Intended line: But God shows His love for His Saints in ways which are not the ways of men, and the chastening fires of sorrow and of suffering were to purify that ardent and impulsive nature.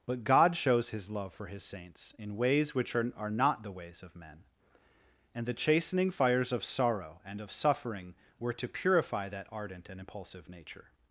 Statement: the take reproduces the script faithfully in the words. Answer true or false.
false